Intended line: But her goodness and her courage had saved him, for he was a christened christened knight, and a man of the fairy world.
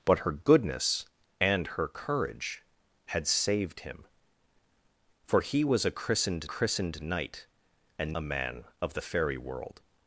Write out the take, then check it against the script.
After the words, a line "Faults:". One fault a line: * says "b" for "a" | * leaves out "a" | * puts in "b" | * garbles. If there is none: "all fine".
But her goodness and her courage had saved him, for he was a christened christened knight, and a man of the fairy world.
Faults:
all fine